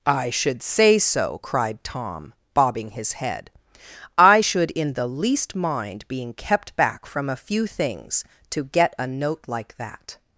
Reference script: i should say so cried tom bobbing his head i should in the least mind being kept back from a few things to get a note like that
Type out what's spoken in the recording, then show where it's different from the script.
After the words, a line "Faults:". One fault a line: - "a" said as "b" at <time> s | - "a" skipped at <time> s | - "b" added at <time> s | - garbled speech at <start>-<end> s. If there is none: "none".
i should say so cried tom bobbing his head i should in the least mind being kept back from a few things to get a note like that
Faults:
none